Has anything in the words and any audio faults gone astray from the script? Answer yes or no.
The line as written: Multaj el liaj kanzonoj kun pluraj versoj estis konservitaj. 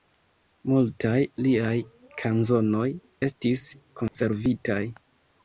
yes